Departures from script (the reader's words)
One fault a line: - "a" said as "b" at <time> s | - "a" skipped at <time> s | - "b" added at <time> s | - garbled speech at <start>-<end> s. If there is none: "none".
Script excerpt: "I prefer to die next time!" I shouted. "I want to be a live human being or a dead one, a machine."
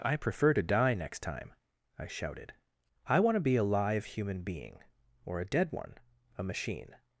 none